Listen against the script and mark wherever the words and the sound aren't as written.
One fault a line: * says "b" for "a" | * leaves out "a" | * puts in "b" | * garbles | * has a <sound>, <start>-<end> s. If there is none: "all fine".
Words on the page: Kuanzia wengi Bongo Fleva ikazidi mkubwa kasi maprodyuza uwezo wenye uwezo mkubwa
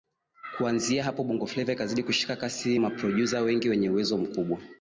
* says "hapo" for "wengi"
* says "kushika" for "mkubwa"
* says "wengi" for "uwezo"